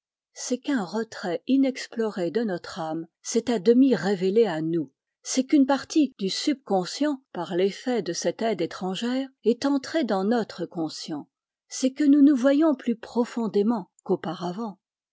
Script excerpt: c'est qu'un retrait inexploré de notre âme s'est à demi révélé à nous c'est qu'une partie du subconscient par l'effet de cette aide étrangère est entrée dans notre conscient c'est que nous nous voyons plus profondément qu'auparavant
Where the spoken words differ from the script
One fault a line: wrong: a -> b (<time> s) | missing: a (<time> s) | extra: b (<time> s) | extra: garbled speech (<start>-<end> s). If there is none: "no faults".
no faults